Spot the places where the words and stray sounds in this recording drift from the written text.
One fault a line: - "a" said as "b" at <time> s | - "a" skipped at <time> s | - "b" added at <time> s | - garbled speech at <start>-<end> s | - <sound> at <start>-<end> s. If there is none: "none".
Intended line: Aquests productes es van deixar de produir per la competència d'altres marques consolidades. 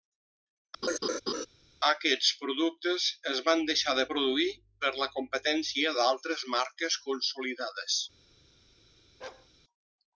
- laugh at 0.8-1.5 s
- bark at 9.2-9.5 s